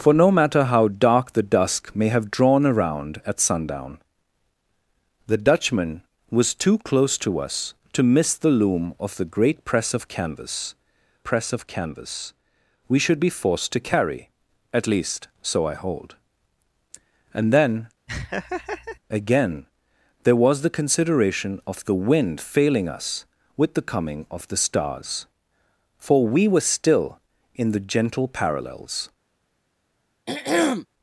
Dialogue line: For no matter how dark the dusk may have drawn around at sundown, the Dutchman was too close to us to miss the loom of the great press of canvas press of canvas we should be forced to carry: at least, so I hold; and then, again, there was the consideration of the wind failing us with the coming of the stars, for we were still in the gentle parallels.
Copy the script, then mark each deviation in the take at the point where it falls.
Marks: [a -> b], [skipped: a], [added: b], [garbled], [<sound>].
For no matter how dark the dusk may have drawn around at sundown, the Dutchman was too close to us to miss the loom of the great press of canvas press of canvas we should be forced to carry: at least, so I hold; and then, [laugh] again, there was the consideration of the wind failing us with the coming of the stars, for we were still in the gentle parallels. [throat clearing]